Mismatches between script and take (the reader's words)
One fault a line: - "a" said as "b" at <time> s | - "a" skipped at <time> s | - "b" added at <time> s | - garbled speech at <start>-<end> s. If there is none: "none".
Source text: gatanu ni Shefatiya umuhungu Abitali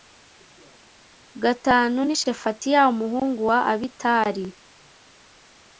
- "wa" added at 3.5 s